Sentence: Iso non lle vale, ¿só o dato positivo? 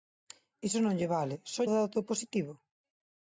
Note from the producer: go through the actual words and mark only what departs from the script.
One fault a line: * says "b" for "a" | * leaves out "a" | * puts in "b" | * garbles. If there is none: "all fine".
all fine